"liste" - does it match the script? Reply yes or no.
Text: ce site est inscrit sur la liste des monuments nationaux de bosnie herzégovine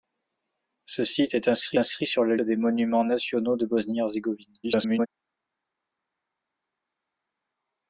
no